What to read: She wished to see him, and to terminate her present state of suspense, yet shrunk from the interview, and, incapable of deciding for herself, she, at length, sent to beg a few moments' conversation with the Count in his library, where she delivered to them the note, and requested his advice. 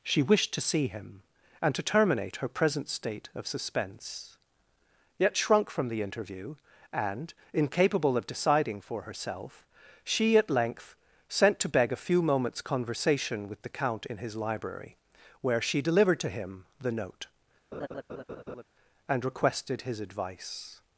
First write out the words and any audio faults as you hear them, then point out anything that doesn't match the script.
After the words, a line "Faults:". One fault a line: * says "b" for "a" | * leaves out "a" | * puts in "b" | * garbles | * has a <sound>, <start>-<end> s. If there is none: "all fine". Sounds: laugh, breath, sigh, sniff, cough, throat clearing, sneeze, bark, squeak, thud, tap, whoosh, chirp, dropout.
She wished to see him, and to terminate her present state of suspense, yet shrunk from the interview, and, incapable of deciding for herself, she, at length, sent to beg a few moments' conversation with the Count in his library, where she delivered to him the note, and requested his advice.
Faults:
* says "him" for "them"
* has a laugh, 17.7-18.6 s